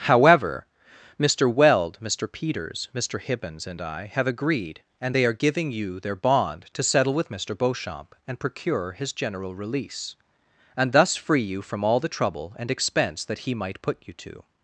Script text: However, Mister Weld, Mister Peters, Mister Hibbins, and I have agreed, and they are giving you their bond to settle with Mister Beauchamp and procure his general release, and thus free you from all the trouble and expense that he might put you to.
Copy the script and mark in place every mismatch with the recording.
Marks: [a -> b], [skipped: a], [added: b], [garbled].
However, Mister Weld, Mister Peters, Mister Hibbins, and I have agreed, and they are giving you their bond to settle with Mister Beauchamp and procure his general release, and thus free you from all the trouble and expense that he might put you to.